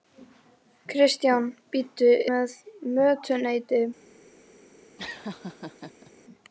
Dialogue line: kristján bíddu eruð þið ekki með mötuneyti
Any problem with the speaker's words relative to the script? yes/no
yes